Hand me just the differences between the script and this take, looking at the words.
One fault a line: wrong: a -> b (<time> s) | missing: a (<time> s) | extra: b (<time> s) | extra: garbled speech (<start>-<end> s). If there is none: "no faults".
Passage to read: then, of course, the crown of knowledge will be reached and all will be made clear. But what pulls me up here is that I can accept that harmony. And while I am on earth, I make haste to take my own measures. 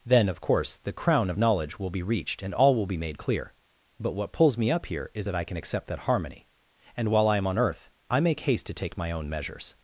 no faults